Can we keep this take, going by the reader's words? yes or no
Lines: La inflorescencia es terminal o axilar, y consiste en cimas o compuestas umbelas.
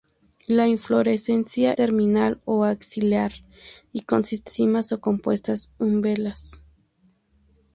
no